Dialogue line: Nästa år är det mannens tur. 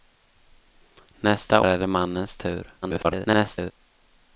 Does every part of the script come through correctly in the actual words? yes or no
no